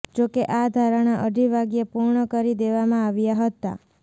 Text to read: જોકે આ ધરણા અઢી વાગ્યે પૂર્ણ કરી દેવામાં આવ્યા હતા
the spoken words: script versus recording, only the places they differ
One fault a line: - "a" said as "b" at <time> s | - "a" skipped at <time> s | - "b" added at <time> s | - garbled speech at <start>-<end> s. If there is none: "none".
none